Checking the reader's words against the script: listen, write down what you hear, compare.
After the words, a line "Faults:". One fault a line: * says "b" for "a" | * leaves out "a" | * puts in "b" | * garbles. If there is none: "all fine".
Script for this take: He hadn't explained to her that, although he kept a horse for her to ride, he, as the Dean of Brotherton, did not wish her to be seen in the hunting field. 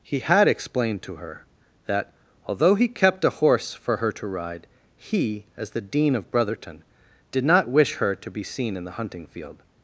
He had explained to her that, although he kept a horse for her to ride, he, as the Dean of Brotherton, did not wish her to be seen in the hunting field.
Faults:
* says "had" for "hadn't"